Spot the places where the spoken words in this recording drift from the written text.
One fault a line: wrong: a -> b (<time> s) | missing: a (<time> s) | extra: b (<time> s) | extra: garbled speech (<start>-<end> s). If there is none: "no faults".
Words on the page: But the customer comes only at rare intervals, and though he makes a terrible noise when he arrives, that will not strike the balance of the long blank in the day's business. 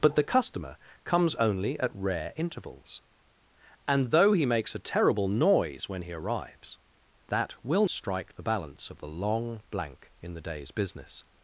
missing: not (7.8 s)